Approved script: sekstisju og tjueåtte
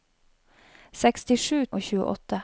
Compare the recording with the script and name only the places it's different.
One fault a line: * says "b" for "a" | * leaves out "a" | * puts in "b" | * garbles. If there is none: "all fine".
all fine